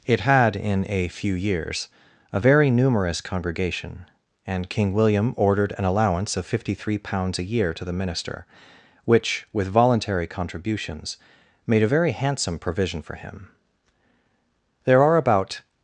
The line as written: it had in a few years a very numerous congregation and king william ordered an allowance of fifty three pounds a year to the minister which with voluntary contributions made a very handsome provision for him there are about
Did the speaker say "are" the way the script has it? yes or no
yes